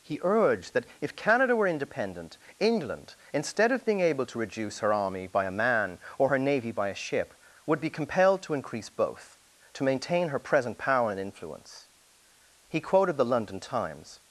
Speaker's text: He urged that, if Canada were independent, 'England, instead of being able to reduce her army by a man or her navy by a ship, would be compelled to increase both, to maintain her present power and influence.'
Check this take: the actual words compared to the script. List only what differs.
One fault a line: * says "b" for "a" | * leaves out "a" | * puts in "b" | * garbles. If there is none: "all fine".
* puts in "He quoted the London Times"